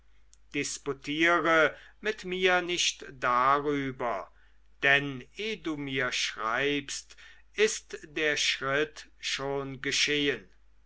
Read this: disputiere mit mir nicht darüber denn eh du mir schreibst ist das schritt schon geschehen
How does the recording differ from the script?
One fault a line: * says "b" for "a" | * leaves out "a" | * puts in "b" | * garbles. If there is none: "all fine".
* says "der" for "das"